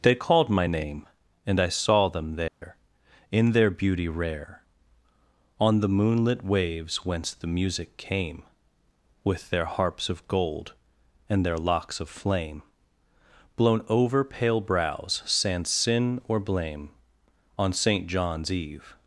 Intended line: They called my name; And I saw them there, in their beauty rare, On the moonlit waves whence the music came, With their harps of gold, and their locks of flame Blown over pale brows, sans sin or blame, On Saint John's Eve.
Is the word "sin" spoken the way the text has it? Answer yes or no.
yes